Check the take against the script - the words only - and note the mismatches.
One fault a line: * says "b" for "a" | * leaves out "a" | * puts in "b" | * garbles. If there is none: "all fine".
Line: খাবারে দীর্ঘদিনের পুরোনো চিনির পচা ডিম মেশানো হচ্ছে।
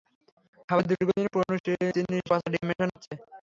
all fine